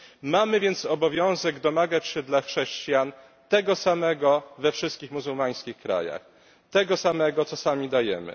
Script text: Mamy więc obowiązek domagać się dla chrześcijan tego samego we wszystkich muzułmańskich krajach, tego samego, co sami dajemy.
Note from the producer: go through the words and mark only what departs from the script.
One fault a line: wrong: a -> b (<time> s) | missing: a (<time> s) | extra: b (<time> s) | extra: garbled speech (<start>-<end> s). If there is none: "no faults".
no faults